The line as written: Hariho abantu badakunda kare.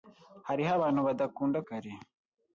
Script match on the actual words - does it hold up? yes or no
yes